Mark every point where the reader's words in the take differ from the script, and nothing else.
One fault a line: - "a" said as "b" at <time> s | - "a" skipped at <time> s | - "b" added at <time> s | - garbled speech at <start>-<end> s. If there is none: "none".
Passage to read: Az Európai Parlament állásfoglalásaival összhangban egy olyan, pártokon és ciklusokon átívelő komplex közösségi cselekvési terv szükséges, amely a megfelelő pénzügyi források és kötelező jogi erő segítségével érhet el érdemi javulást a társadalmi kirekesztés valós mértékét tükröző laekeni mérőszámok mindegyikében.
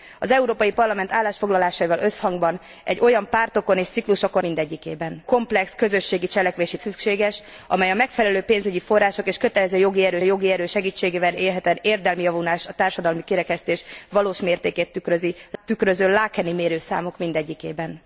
- "átívelő" said as "mindegyikében" at 4.4 s
- "terv" skipped at 6.8 s
- "jogi erő" added at 10.2 s